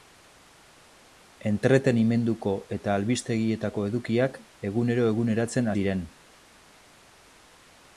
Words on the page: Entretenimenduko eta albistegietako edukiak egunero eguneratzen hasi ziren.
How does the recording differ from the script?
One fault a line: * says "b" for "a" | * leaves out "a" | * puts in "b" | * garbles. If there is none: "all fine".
* leaves out "hasi"